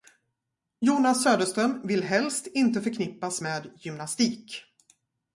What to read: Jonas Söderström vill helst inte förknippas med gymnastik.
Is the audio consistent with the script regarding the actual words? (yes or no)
yes